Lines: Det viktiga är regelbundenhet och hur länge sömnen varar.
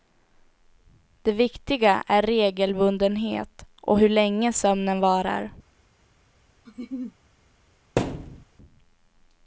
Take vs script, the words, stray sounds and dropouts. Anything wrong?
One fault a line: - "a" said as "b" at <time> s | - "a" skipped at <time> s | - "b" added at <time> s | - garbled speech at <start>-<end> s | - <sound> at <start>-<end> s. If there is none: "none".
- laugh at 6.7-7.2 s
- thud at 8.0-8.4 s